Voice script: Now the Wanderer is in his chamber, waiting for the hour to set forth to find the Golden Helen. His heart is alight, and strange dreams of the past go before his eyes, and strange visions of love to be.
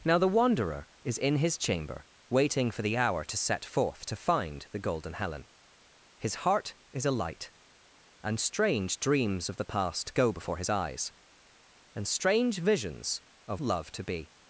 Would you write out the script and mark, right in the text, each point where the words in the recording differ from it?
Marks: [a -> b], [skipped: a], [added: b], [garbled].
Now the Wanderer is in his chamber, waiting for the hour to set forth to find the Golden Helen. His heart is alight, and strange dreams of the past go before his eyes, and strange visions of love to be.